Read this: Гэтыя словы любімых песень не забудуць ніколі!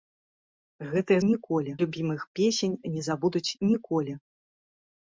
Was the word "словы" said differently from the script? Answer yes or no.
yes